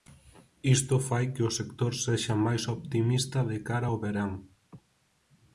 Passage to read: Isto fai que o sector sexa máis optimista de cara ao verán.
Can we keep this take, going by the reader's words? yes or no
yes